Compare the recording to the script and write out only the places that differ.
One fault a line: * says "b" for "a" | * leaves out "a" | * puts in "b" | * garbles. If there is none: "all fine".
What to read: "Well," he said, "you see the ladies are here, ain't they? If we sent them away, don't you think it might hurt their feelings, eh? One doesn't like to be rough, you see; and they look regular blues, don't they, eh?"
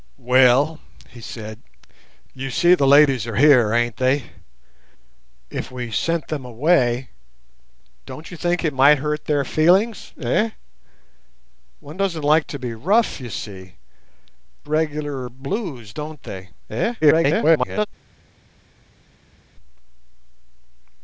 * leaves out "and they look"
* garbles